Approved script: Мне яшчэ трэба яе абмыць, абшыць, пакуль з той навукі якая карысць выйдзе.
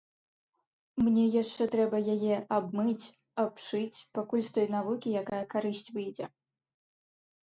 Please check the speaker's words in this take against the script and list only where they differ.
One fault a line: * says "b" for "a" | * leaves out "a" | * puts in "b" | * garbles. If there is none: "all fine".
all fine